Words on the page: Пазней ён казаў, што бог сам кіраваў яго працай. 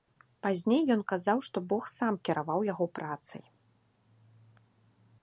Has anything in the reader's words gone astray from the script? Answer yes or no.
no